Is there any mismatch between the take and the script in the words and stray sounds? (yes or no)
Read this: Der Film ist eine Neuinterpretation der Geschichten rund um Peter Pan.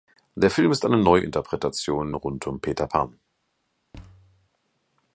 yes